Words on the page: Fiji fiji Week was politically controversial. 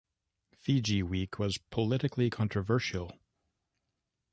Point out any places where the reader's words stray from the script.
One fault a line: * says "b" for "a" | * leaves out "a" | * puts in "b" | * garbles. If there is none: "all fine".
* leaves out "fiji"